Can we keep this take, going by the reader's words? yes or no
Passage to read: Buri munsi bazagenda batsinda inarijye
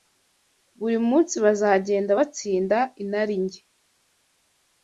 yes